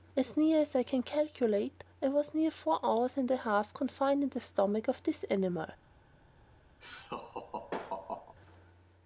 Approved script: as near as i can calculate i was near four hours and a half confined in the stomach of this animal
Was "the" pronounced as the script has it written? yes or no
yes